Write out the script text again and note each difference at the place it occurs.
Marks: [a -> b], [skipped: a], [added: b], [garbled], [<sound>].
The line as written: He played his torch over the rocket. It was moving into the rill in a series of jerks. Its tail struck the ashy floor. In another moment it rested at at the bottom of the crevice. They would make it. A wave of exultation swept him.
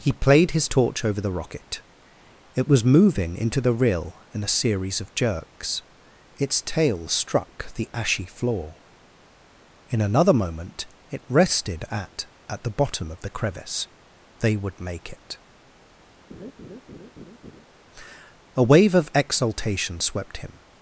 He played his torch over the rocket. It was moving into the rill in a series of jerks. Its tail struck the ashy floor. In another moment it rested at at the bottom of the crevice. They would make it. [laugh] A wave of exultation swept him.